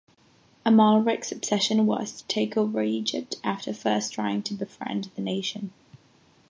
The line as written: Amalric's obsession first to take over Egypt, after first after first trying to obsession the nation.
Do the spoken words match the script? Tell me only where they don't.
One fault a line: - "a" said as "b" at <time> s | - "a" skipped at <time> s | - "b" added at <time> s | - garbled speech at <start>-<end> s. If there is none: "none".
- "first" said as "was" at 1.9 s
- "after first" skipped at 4.1 s
- "obsession" said as "befriend" at 4.5 s